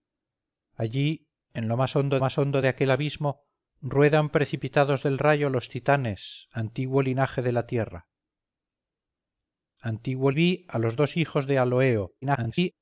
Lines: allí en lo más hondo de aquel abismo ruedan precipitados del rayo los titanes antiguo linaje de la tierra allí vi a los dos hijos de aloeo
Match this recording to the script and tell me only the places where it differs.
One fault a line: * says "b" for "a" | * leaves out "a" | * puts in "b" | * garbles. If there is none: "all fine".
* puts in "más hondo"
* says "antiguo" for "allí"
* garbles